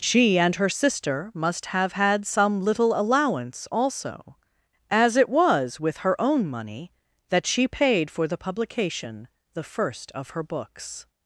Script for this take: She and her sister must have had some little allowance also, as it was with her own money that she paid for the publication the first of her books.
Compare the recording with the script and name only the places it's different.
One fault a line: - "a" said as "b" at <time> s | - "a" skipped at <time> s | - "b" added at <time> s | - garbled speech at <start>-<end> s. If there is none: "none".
none